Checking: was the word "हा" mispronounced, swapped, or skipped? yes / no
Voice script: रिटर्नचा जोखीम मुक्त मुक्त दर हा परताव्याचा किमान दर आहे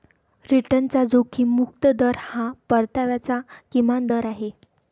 no